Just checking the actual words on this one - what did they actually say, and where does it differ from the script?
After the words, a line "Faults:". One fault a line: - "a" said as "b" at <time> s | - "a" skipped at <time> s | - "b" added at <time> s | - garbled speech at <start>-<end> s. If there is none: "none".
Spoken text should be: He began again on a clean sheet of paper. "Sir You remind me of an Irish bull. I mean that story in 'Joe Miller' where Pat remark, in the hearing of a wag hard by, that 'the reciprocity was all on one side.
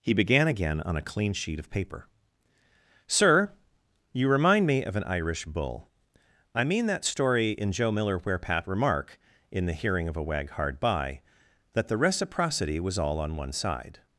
He began again on a clean sheet of paper. "Sir You remind me of an Irish bull. I mean that story in 'Joe Miller' where Pat remark, in the hearing of a wag hard by, that 'the reciprocity was all on one side.
Faults:
none